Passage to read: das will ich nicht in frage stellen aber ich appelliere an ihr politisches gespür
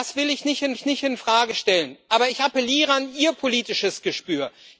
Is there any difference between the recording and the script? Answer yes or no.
yes